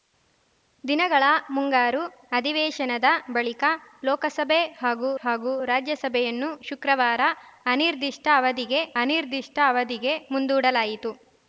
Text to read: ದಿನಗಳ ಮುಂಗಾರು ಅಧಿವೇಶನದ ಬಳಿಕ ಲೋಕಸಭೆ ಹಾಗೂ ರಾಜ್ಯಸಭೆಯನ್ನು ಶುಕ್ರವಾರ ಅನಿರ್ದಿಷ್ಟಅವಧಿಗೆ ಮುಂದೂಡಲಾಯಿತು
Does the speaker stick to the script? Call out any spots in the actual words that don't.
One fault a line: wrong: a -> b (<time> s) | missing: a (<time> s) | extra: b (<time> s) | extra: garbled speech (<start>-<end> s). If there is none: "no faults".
extra: ಹಾಗೂ (5.2 s)
extra: ಅನಿರ್ದಿಷ್ಟಅವಧಿಗೆ (9.0 s)